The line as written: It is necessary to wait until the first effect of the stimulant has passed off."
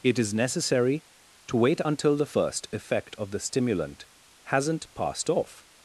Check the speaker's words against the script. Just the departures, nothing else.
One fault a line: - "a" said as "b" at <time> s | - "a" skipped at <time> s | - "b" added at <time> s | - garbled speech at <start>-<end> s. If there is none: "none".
- "has" said as "hasn't" at 4.4 s